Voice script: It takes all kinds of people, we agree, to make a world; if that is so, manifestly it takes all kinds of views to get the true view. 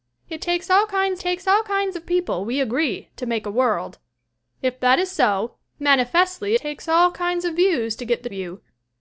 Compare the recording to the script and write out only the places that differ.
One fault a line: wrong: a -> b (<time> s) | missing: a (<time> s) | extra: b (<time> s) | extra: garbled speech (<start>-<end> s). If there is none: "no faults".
extra: takes all kinds (1.2 s)
missing: it (6.5 s)
missing: true (8.3 s)